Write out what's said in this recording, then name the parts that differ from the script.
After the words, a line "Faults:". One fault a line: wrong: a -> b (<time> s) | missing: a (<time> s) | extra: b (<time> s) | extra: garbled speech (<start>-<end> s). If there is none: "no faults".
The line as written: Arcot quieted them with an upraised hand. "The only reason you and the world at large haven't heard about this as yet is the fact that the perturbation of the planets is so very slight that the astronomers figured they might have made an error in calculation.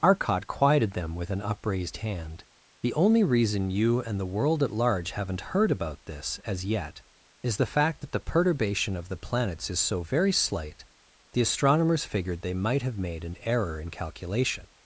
Arcot quieted them with an upraised hand. "The only reason you and the world at large haven't heard about this as yet is the fact that the perturbation of the planets is so very slight the astronomers figured they might have made an error in calculation.
Faults:
missing: that (10.8 s)